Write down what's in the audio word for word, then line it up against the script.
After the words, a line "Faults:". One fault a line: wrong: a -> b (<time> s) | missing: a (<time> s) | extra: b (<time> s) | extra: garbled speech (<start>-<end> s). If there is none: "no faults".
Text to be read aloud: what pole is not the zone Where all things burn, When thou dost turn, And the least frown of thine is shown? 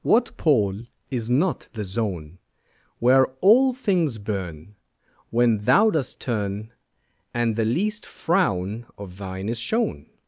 what pole is not the zone Where all things burn, When thou dost turn, And the least frown of thine is shown?
Faults:
no faults